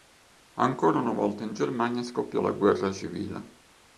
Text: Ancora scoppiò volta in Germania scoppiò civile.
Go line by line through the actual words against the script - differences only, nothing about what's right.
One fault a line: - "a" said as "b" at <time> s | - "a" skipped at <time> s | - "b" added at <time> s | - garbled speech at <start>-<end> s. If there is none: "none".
- "scoppiò" said as "una" at 1.0 s
- "la guerra" added at 2.4 s